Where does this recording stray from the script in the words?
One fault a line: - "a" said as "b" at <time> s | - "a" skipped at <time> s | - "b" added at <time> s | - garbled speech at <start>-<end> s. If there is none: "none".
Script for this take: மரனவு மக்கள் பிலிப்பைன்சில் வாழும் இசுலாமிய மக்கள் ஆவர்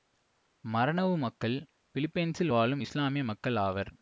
none